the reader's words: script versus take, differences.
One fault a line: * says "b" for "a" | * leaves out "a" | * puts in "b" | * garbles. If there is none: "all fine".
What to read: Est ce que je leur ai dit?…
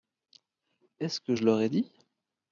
all fine